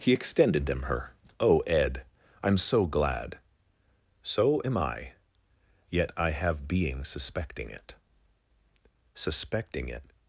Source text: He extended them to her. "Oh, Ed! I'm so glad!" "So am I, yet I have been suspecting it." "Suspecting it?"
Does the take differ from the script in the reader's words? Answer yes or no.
yes